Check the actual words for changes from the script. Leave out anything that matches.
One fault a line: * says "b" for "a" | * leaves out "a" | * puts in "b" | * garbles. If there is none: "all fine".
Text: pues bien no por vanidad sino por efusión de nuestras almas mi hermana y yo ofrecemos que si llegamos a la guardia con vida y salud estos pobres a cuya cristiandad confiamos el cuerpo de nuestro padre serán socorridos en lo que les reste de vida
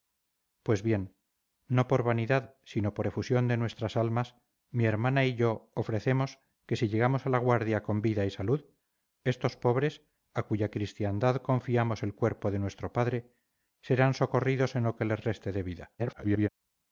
* garbles